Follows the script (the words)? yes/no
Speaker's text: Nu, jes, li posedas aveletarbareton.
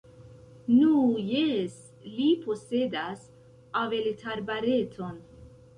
yes